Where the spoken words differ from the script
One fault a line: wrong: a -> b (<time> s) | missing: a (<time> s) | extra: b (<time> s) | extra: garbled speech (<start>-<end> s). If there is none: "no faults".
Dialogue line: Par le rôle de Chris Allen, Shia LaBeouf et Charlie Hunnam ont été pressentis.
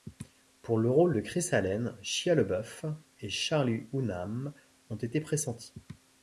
wrong: Par -> Pour (0.6 s)